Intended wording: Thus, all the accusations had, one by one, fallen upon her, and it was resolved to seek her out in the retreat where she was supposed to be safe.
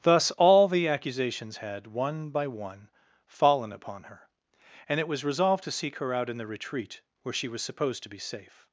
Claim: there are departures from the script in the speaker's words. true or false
false